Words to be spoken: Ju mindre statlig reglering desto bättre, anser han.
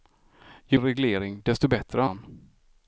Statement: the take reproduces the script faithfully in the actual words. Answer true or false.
false